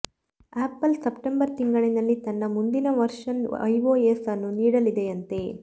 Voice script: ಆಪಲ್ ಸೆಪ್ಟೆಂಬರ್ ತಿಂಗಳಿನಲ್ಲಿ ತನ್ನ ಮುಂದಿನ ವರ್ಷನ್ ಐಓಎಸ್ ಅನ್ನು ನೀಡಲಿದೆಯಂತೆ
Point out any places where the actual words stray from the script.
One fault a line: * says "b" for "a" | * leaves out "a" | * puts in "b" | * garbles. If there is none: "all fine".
all fine